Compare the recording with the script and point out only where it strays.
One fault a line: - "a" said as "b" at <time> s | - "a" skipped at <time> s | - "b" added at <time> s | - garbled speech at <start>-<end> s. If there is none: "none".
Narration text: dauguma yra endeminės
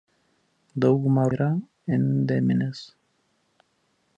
none